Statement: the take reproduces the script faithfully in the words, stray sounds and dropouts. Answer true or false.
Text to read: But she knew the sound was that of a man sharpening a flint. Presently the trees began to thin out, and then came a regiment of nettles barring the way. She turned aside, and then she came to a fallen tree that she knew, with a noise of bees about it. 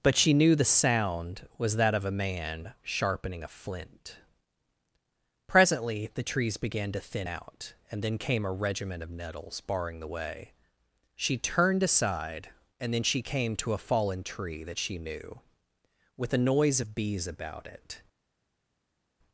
true